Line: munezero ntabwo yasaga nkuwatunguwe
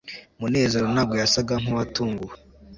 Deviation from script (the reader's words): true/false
false